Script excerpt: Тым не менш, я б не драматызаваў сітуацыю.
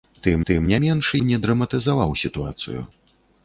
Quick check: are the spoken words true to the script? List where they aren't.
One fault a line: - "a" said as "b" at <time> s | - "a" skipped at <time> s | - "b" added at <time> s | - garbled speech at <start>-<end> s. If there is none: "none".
- "тым" added at 0.5 s
- "я" skipped at 1.1 s